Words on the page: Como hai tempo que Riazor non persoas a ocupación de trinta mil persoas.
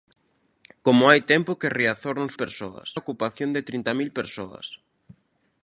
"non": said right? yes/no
yes